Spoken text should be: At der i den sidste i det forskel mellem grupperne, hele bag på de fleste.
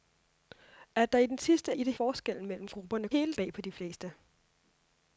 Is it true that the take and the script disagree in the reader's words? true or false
false